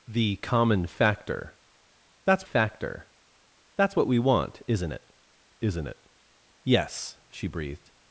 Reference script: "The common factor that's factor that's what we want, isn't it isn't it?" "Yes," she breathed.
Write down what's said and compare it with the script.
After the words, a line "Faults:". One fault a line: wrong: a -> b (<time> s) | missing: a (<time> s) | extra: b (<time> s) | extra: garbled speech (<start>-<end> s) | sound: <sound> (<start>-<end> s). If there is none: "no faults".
"The common factor that's factor that's what we want, isn't it isn't it?" "Yes," she breathed.
Faults:
no faults